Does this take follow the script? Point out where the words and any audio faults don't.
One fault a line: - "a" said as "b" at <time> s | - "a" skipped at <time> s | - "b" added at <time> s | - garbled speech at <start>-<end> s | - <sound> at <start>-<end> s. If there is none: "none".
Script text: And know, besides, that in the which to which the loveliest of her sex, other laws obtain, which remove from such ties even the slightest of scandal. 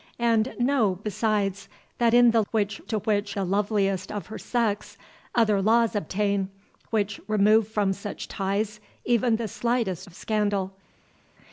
none